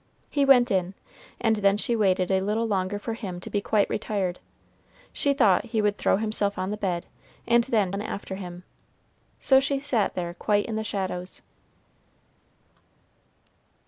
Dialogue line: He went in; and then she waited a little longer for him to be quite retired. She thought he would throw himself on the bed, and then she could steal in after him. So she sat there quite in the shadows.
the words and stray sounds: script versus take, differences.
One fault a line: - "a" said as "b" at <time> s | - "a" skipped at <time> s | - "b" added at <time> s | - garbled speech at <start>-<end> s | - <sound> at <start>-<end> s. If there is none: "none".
- "she could steal" skipped at 7.9 s